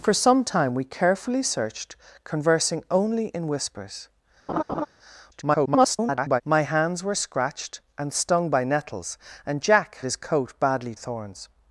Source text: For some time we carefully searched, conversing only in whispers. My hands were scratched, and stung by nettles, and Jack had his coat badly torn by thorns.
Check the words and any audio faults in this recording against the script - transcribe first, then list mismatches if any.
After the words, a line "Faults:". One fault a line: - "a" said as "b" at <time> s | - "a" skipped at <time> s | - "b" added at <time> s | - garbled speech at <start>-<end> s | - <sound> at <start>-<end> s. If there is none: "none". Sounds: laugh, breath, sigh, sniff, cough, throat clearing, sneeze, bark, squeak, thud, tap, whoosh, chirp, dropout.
For some time we carefully searched, conversing only in whispers. [garbled] My hands were scratched, and stung by nettles, and Jack his coat badly thorns.
Faults:
- laugh at 4.5-4.9 s
- garbled speech at 5.3-6.4 s
- "had" skipped at 10.0 s
- "torn by" skipped at 10.9 s